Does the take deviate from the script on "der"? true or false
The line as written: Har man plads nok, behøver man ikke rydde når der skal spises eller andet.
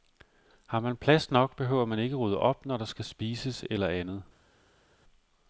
false